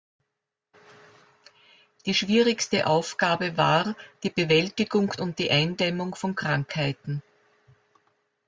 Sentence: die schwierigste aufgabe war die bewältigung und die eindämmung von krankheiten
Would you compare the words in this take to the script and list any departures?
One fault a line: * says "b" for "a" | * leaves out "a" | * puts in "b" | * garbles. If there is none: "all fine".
all fine